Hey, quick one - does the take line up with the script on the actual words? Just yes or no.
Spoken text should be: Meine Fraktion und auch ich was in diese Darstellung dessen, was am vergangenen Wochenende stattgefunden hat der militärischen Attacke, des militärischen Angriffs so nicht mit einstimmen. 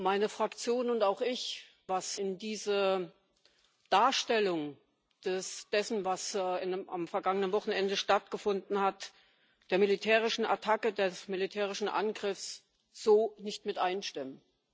yes